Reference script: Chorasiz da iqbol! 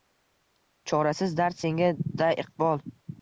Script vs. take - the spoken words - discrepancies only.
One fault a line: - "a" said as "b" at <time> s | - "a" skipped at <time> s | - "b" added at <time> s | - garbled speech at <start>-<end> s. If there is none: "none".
- "dard senga" added at 1.4 s